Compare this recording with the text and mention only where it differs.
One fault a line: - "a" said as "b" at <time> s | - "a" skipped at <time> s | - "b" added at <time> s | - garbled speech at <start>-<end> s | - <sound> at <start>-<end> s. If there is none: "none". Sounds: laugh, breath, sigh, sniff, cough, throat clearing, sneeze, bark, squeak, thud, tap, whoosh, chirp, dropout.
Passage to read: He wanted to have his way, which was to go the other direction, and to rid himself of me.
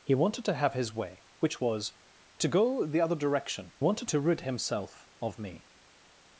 - "and" said as "wanted" at 3.8 s